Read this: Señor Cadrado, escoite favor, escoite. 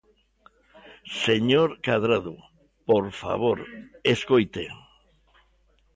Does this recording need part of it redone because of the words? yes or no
yes